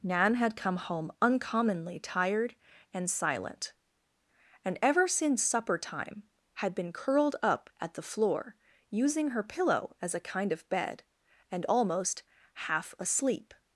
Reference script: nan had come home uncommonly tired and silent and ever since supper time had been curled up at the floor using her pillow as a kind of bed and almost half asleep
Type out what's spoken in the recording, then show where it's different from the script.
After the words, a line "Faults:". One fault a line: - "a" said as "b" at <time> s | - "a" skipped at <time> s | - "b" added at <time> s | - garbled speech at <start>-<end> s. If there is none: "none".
nan had come home uncommonly tired and silent and ever since supper time had been curled up at the floor using her pillow as a kind of bed and almost half asleep
Faults:
none